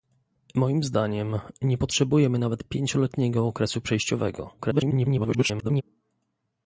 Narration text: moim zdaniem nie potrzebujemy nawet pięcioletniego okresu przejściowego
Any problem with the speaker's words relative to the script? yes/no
yes